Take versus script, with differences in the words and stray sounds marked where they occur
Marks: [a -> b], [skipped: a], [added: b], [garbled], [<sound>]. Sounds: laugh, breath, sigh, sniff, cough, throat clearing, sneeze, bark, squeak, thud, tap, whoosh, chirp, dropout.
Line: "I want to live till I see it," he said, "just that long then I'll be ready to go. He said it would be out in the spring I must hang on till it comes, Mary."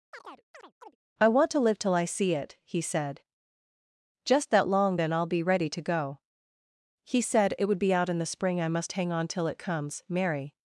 [chirp] "I want to live till I see it," he said, "just that long then I'll be ready to go. He said it would be out in the spring I must hang on till it comes, Mary."